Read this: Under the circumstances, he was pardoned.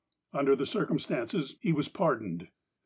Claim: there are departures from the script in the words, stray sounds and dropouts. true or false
false